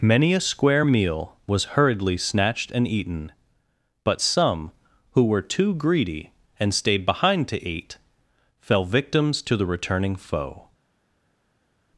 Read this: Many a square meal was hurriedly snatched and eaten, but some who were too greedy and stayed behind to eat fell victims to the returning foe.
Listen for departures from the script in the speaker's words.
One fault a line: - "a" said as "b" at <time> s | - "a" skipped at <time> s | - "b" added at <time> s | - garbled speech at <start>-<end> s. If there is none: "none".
none